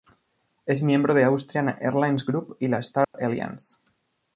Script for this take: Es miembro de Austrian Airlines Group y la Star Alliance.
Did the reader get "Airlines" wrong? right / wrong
right